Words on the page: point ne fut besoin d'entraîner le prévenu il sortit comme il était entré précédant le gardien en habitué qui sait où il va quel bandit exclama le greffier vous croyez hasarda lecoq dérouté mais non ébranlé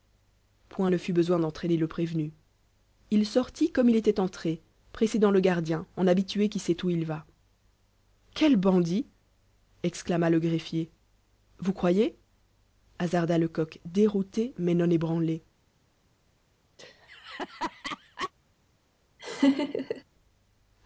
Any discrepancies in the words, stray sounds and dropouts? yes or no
yes